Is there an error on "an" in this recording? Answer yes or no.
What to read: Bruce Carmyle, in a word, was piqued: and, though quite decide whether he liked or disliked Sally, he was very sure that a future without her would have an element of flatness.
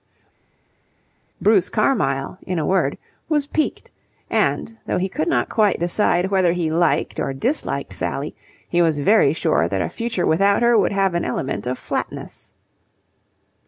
no